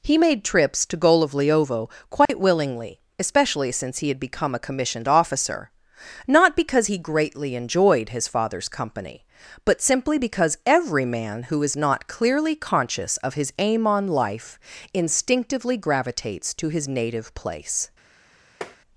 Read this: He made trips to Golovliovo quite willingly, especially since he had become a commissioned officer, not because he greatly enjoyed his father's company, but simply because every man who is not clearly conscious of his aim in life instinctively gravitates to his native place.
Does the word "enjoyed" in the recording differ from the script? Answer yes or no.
no